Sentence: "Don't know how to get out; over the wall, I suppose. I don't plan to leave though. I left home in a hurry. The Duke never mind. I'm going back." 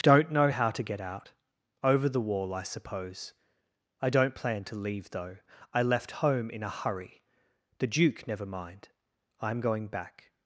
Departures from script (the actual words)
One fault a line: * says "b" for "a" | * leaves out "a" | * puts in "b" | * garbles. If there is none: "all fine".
all fine